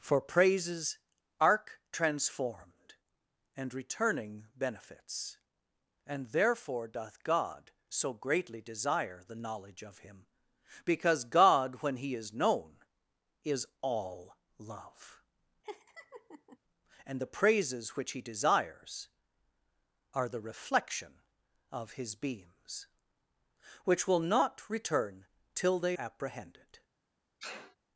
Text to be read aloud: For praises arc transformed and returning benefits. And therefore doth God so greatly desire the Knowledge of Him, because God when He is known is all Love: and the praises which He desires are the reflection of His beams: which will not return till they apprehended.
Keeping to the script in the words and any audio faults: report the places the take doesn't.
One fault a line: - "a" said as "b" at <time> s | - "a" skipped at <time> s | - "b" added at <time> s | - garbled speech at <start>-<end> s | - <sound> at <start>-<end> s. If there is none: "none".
- laugh at 15.6-16.6 s
- sneeze at 27.4-27.8 s